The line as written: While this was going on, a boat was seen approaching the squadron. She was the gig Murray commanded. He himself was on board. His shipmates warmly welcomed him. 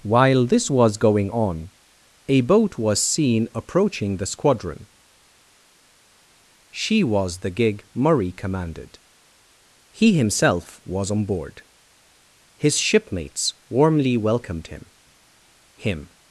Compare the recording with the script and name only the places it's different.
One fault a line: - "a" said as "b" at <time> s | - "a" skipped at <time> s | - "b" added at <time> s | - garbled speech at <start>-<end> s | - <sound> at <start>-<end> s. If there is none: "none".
- "him" added at 15.7 s